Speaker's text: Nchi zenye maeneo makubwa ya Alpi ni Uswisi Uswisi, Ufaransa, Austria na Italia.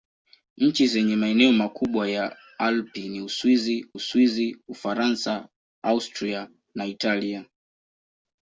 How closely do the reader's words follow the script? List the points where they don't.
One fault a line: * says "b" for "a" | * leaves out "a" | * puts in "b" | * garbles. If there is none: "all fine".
all fine